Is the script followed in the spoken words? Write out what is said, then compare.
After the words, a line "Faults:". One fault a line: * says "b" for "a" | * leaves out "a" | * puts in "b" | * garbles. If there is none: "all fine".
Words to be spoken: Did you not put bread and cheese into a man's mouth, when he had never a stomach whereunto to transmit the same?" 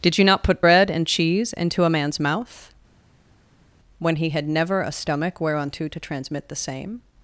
Did you not put bread and cheese into a man's mouth, when he had never a stomach whereunto to transmit the same?"
Faults:
all fine